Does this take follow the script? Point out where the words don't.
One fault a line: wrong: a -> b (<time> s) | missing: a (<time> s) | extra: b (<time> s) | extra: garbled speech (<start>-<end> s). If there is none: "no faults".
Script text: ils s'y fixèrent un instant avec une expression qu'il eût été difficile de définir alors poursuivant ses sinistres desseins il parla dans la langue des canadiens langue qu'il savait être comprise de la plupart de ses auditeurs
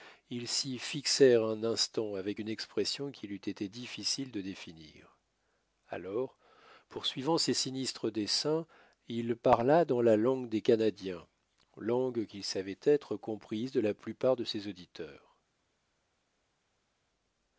no faults